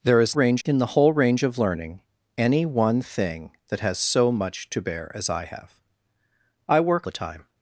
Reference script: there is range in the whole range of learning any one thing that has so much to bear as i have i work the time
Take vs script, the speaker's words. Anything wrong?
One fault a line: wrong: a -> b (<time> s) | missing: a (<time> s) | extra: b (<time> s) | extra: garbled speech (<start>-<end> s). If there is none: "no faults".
no faults